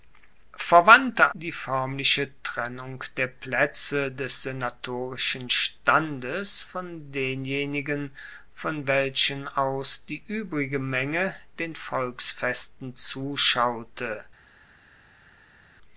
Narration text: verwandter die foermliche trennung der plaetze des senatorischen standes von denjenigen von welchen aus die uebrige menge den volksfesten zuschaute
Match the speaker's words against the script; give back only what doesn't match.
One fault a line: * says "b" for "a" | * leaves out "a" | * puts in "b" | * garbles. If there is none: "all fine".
all fine